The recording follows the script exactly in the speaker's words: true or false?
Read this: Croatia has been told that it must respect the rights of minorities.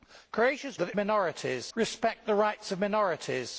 false